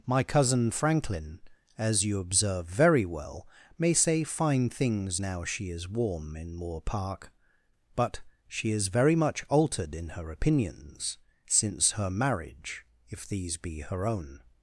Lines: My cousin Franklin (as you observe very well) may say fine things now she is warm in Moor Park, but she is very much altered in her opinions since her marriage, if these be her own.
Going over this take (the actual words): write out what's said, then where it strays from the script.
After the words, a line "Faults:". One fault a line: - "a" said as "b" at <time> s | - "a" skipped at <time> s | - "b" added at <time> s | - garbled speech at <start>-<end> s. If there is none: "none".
My cousin Franklin (as you observe very well) may say fine things now she is warm in Moor Park, but she is very much altered in her opinions since her marriage, if these be her own.
Faults:
none